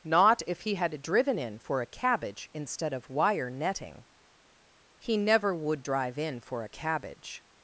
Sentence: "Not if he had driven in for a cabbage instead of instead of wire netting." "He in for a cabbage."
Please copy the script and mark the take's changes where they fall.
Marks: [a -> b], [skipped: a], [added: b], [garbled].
"Not if he had driven in for a cabbage instead of [skipped: instead of] wire netting." "He [added: never would drive] in for a cabbage."